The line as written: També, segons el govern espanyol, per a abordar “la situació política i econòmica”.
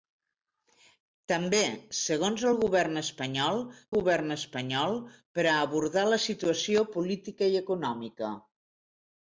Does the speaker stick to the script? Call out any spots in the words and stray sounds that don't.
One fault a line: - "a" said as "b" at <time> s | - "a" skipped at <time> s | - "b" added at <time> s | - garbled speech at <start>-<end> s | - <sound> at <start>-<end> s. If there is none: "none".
- "govern espanyol" added at 4.0 s